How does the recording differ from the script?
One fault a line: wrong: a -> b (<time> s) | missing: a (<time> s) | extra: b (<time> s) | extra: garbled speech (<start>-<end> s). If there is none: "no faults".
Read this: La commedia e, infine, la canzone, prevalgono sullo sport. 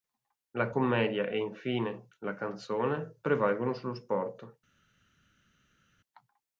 no faults